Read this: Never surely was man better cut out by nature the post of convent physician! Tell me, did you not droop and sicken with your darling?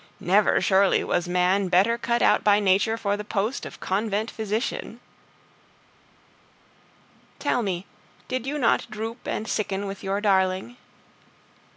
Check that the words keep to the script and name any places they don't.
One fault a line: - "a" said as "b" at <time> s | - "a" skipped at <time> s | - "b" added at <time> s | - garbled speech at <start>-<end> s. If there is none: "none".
- "for" added at 3.0 s